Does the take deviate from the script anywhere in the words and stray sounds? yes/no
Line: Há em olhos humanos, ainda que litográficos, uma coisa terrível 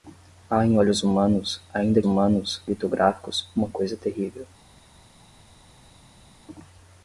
yes